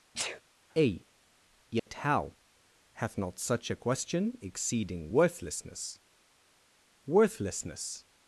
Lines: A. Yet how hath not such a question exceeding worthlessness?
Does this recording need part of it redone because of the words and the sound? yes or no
yes